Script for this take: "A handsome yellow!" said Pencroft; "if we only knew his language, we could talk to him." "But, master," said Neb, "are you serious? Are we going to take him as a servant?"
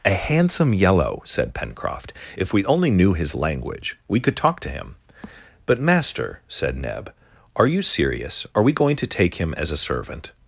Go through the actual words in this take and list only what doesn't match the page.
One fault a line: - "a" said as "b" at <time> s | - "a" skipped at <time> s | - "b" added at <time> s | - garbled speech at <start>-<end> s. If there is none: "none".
none